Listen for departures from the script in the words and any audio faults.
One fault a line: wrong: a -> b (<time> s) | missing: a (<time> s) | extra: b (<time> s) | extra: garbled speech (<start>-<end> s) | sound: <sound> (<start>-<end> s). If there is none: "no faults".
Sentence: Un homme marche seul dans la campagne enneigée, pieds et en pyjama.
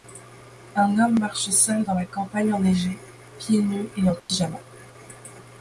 extra: nus (3.6 s)
sound: dropout (4.2-4.3 s)